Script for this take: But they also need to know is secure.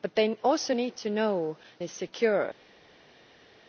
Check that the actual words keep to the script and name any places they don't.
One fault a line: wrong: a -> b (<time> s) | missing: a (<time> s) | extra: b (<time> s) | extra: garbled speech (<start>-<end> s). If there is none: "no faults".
no faults